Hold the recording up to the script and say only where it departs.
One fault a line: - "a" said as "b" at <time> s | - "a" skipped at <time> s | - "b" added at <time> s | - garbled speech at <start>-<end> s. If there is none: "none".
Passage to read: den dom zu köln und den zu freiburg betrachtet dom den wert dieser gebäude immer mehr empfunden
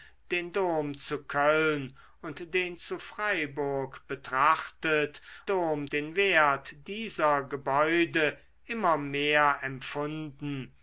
none